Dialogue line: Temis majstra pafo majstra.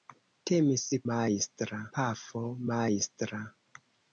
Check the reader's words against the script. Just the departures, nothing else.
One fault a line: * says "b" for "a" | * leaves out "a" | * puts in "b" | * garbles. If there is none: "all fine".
all fine